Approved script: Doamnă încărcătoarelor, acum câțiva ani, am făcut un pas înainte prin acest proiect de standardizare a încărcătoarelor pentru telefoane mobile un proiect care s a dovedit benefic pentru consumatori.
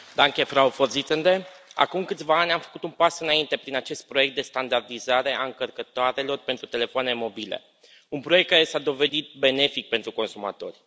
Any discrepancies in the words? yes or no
yes